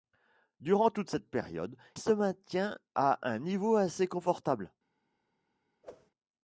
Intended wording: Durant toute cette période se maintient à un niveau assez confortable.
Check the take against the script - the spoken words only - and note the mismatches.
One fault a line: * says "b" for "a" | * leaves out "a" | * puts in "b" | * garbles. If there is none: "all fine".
all fine